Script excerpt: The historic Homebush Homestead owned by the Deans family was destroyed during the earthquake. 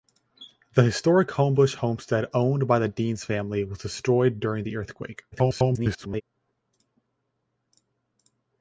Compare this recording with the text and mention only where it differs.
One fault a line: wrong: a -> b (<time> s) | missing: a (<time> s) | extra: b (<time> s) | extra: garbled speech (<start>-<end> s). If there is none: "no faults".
extra: garbled speech (5.3-6.2 s)